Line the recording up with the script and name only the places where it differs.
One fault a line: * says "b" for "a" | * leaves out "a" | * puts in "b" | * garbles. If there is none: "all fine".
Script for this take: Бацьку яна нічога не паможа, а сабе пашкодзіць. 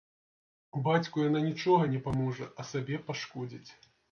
all fine